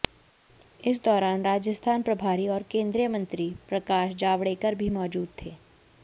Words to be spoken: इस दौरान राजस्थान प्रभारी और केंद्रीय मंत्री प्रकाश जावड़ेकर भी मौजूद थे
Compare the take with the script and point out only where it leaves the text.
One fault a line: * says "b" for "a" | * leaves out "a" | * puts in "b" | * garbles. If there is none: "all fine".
all fine